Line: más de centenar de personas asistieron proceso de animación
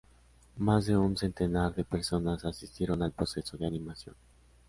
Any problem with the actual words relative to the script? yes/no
yes